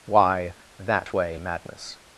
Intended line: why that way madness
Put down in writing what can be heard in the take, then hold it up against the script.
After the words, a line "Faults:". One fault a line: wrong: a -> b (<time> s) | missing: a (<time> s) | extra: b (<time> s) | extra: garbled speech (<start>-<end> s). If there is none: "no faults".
why that way madness
Faults:
no faults